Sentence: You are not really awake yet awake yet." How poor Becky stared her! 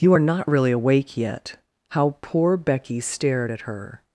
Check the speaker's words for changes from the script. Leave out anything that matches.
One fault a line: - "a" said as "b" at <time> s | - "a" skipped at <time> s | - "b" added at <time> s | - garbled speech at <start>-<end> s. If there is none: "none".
- "awake yet" skipped at 1.6 s
- "at" added at 3.5 s